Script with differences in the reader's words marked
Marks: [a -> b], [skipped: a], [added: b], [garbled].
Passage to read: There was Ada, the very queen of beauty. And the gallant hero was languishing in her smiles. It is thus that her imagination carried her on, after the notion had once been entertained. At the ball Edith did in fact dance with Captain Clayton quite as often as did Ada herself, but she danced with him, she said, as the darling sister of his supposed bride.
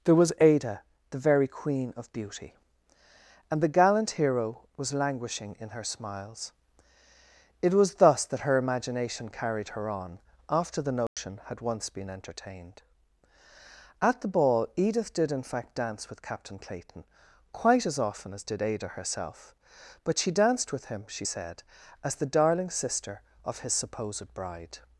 There was Ada, the very queen of beauty. And the gallant hero was languishing in her smiles. It [is -> was] thus that her imagination carried her on, after the notion had once been entertained. At the ball Edith did in fact dance with Captain Clayton quite as often as did Ada herself, but she danced with him, she said, as the darling sister of his supposed bride.